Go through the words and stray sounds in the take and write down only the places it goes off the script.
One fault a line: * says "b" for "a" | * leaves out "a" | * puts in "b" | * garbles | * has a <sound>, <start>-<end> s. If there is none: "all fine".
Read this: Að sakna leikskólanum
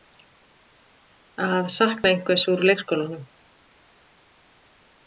* puts in "einhvers úr"